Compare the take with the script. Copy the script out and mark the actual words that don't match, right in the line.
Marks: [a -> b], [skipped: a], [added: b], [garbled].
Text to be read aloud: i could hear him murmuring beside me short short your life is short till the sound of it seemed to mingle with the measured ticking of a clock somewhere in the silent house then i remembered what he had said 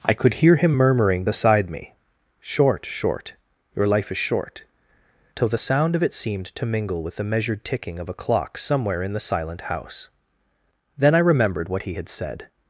i could hear him murmuring beside me short short your life is short till the sound of it seemed to mingle with the measured ticking of a clock somewhere in the silent house then i remembered what he had said